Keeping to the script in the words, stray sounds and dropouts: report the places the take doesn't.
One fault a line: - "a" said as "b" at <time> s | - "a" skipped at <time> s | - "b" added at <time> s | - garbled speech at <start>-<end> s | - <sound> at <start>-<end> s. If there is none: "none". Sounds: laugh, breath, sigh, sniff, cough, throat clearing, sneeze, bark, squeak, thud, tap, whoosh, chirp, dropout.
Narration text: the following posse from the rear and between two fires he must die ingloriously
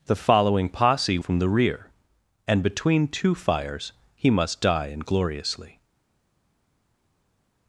none